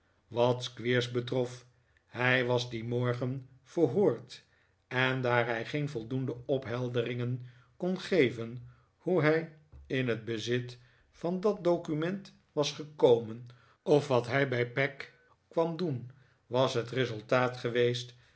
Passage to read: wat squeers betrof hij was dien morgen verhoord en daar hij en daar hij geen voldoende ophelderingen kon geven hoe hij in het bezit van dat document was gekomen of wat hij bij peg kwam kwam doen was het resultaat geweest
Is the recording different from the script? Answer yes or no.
yes